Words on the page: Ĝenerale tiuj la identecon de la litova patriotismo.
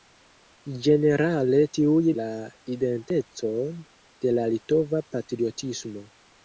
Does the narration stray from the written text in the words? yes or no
no